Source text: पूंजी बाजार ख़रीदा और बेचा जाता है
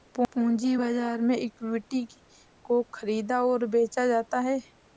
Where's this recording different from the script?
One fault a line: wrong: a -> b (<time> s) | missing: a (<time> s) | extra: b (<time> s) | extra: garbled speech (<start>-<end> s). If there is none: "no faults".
extra: में इक्विटी को (1.2 s)